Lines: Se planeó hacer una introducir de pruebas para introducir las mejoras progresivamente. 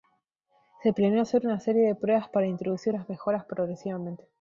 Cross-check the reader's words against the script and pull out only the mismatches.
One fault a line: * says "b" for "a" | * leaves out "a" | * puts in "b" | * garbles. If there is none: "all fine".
* says "serie" for "introducir"